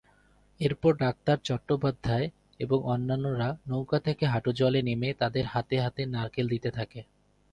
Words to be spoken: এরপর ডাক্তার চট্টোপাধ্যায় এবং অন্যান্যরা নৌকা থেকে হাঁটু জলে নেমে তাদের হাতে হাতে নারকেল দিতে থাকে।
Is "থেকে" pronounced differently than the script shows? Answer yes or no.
no